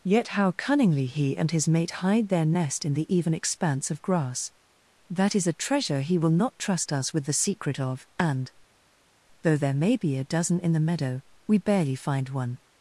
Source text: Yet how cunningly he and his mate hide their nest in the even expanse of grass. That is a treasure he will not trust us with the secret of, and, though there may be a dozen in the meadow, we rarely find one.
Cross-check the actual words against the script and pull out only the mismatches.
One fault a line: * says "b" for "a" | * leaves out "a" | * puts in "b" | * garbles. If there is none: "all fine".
* says "barely" for "rarely"